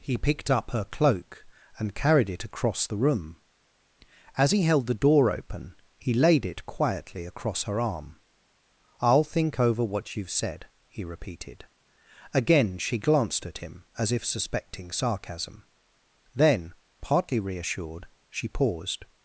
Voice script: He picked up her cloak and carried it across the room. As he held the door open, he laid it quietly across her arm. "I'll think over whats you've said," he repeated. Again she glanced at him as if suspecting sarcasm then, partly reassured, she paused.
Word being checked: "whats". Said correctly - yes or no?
no